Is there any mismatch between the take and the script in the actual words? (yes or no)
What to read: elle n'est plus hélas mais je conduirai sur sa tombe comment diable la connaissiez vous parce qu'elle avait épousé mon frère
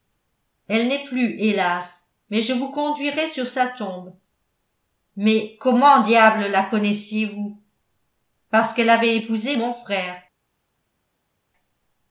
yes